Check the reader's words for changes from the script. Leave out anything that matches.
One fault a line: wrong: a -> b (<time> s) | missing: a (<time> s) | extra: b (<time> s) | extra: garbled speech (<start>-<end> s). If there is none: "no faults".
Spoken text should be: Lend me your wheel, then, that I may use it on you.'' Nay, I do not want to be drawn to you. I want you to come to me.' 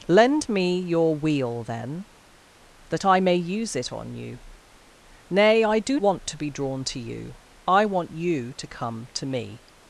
missing: not (6.0 s)